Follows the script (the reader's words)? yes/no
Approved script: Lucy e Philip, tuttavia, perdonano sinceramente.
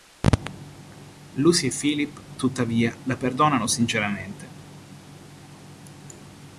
no